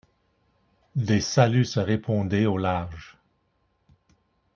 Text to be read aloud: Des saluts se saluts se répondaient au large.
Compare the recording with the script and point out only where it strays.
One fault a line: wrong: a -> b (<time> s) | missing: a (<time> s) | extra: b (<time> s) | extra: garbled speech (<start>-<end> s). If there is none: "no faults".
missing: saluts se (1.8 s)